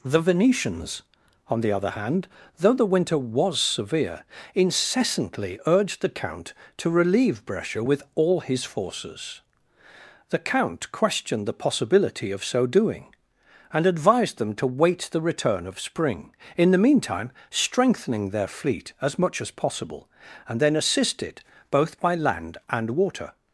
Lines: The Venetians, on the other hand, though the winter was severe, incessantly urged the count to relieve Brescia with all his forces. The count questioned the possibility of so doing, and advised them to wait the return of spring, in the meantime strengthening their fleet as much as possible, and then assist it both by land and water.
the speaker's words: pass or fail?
pass